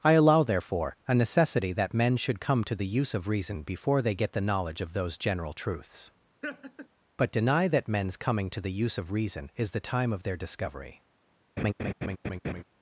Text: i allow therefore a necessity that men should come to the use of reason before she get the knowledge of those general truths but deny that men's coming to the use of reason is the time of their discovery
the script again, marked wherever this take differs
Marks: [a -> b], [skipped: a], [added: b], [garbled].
i allow therefore a necessity that men should come to the use of reason before [she -> they] get the knowledge of those general truths but deny that men's coming to the use of reason is the time of their discovery